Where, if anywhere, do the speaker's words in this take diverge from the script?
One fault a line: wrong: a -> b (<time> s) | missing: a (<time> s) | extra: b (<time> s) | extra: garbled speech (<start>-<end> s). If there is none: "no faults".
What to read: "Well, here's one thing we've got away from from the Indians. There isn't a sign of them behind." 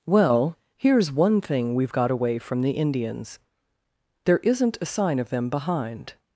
missing: from (2.6 s)